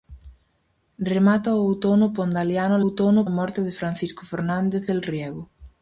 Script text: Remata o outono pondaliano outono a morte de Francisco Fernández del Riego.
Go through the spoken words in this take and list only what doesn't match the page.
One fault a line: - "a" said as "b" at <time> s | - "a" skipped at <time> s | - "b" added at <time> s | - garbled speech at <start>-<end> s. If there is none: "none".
none